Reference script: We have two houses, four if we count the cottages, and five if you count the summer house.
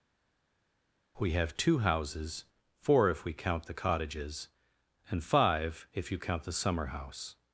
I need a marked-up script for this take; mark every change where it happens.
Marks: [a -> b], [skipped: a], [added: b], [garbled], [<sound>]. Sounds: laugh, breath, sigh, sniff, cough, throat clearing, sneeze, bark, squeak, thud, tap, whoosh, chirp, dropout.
We have two houses, four if we count the cottages, and five if you count the summer house.